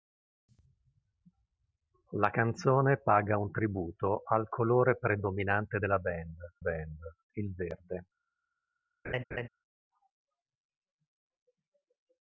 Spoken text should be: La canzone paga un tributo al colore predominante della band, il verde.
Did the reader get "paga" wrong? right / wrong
right